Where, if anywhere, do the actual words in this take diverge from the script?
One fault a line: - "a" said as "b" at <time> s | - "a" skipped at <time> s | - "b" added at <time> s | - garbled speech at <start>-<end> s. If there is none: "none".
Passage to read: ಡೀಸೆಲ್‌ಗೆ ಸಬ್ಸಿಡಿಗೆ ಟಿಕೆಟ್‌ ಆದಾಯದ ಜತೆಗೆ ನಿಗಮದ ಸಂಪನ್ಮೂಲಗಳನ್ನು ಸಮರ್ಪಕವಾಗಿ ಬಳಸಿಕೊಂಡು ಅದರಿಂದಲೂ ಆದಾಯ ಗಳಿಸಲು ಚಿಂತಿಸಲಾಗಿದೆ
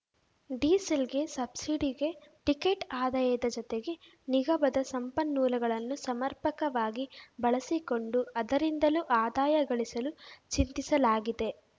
none